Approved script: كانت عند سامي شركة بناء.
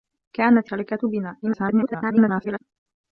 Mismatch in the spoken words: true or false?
true